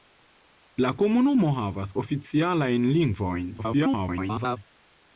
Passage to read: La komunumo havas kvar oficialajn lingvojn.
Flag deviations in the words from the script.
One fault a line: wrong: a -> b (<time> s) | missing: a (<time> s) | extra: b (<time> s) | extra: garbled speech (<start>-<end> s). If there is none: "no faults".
missing: kvar (1.9 s)
extra: garbled speech (3.6-4.6 s)